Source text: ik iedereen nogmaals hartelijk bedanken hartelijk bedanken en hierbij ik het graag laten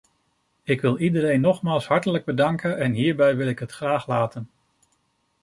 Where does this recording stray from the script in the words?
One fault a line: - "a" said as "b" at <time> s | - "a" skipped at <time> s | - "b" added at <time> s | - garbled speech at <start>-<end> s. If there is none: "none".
- "wil" added at 0.8 s
- "hartelijk bedanken" skipped at 2.8 s
- "wil" added at 3.4 s